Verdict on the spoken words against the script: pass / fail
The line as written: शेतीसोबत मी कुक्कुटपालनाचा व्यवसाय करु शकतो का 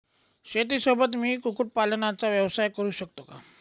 pass